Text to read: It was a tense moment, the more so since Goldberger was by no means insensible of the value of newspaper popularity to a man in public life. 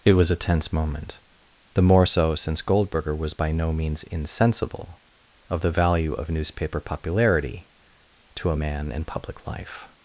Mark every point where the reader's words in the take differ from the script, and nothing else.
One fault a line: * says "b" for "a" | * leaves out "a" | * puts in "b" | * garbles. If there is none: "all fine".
all fine